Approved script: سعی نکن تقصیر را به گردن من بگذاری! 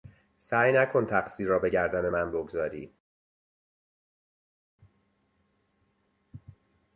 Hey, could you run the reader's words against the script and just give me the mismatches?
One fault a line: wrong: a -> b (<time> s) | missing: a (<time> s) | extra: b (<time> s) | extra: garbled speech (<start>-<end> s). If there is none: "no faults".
no faults